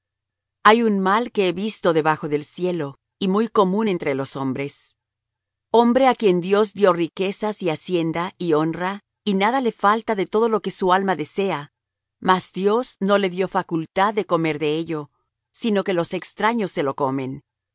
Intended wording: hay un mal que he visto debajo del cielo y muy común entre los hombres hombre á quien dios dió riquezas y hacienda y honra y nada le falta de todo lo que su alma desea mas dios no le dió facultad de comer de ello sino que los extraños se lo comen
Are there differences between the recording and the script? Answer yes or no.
no